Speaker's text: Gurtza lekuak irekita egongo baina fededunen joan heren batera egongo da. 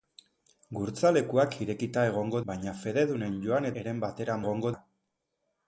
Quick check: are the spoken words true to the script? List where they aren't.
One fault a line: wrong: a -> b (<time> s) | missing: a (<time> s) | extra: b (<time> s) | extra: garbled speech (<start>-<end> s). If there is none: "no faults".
no faults